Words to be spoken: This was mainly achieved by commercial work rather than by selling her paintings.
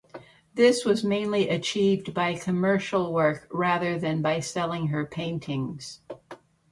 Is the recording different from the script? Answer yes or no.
no